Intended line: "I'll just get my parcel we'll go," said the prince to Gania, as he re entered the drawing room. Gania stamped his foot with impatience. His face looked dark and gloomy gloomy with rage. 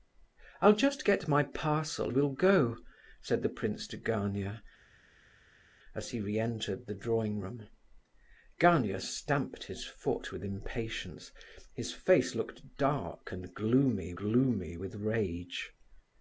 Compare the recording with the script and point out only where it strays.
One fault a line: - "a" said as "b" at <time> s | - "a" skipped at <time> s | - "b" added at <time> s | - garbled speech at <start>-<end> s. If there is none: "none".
none